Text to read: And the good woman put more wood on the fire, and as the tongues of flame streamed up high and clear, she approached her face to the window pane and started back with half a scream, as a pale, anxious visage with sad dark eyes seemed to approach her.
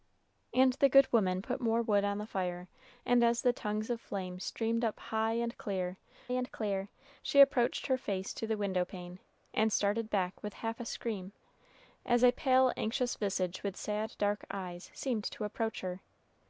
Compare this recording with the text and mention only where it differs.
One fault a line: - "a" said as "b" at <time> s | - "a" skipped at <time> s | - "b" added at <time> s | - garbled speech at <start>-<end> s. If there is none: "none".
- "and clear" added at 6.3 s